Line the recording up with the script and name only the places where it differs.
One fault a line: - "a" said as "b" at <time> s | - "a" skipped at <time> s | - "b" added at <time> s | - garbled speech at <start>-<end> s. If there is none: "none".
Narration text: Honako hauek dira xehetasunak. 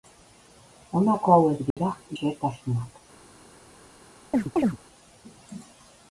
none